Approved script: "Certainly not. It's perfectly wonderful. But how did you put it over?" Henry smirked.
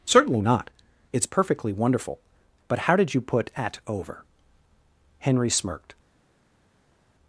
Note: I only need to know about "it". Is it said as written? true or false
false